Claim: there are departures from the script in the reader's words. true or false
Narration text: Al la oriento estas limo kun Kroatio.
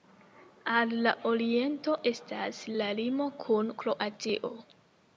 true